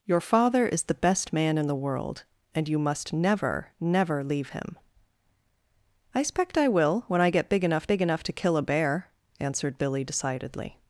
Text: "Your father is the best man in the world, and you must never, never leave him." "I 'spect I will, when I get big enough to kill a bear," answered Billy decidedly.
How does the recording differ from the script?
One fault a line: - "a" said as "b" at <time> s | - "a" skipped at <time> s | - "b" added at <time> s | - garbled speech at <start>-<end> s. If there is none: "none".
- "big enough" added at 7.9 s